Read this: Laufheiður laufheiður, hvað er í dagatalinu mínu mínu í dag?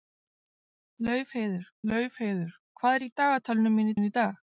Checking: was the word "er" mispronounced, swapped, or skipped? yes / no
no